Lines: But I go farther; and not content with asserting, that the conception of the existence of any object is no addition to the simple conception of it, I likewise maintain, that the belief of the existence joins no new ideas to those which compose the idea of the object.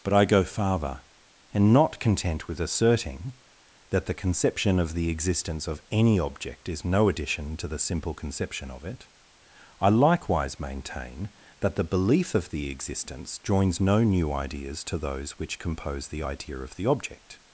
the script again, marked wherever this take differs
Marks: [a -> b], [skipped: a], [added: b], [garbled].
But I go farther; and not content with asserting, that the conception of the existence of any object is no addition to the simple conception of it, I likewise maintain, that the belief of the existence joins no new ideas to those which compose the idea of the object.